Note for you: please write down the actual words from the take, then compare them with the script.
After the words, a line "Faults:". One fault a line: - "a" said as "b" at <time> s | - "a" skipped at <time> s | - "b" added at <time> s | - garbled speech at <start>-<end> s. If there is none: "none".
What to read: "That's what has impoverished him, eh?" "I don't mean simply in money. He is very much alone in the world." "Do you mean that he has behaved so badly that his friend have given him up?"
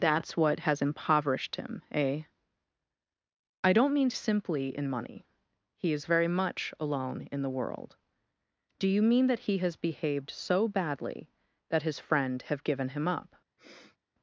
"That's what has impoverished him, eh?" "I don't mean simply in money. He is very much alone in the world." "Do you mean that he has behaved so badly that his friend have given him up?"
Faults:
none